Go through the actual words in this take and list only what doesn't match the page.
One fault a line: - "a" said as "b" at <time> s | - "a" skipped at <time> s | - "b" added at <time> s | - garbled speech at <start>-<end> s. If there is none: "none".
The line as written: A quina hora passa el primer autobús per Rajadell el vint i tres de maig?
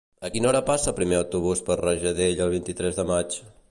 none